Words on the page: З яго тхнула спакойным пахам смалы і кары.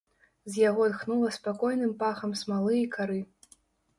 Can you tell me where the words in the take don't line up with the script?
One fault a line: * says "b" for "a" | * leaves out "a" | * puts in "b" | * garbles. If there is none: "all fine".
all fine